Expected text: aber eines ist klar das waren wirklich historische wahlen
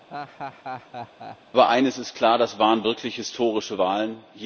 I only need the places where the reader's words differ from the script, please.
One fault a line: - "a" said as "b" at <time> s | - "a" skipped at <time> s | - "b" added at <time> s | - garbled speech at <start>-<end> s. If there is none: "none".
none